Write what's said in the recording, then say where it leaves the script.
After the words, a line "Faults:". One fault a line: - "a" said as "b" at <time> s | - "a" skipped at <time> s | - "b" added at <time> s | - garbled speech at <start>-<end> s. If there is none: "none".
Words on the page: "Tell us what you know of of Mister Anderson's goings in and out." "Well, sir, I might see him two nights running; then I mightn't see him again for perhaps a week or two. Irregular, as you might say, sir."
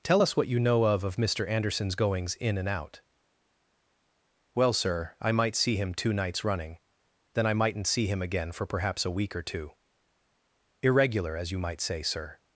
"Tell us what you know of of Mister Anderson's goings in and out." "Well, sir, I might see him two nights running; then I mightn't see him again for perhaps a week or two. Irregular, as you might say, sir."
Faults:
none